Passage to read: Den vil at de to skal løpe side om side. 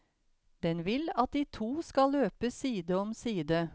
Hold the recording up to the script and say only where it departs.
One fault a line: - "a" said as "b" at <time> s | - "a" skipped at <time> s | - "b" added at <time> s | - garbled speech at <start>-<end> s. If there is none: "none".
none